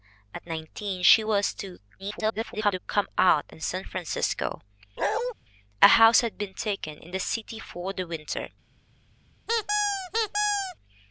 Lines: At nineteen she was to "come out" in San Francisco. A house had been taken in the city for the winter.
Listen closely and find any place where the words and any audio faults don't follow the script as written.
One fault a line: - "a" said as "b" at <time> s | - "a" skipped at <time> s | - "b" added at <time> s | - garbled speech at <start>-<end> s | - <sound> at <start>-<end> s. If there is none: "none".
- garbled speech at 2.0-2.8 s
- bark at 5.0-5.3 s
- squeak at 9.5-10.8 s